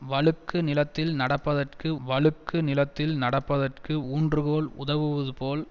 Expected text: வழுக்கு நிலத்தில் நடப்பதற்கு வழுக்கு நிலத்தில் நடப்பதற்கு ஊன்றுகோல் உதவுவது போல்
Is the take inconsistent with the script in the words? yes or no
no